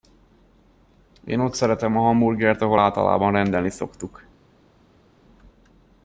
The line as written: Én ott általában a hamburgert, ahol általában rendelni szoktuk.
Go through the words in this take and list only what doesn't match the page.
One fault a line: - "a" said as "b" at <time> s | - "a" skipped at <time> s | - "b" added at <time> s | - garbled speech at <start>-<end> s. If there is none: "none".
- "általában" said as "szeretem" at 1.5 s